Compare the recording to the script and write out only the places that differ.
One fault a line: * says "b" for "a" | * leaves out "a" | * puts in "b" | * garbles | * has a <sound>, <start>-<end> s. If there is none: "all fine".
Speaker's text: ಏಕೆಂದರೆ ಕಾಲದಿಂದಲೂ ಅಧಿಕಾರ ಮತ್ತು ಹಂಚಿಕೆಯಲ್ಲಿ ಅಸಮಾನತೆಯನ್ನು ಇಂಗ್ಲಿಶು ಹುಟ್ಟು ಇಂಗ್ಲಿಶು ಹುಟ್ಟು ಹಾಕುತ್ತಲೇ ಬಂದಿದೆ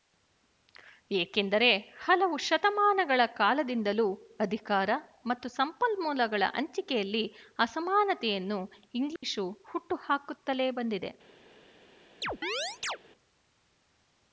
* puts in "ಹಲವು ಶತಮಾನಗಳ"
* puts in "ಸಂಪನ್ಮೂಲಗಳ"
* has a dropout, 9.2-9.2 s
* leaves out "ಇಂಗ್ಲಿಶು ಹುಟ್ಟು"
* has a chirp, 12.2-13.0 s